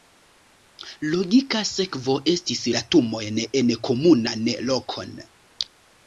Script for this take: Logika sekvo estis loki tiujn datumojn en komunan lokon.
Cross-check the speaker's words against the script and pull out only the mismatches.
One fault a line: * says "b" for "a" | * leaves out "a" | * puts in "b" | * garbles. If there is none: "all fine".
* leaves out "loki tiujn"